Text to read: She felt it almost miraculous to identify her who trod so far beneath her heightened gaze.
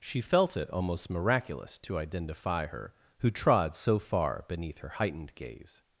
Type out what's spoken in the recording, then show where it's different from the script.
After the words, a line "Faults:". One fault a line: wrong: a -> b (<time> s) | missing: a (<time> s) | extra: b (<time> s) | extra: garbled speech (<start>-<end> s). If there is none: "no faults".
She felt it almost miraculous to identify her who trod so far beneath her heightened gaze.
Faults:
no faults